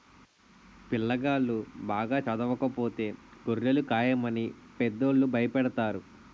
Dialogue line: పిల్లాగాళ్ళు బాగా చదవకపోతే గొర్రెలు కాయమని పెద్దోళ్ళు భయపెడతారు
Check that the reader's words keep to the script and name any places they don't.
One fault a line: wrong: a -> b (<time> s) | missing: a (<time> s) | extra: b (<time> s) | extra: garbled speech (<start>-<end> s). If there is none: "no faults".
no faults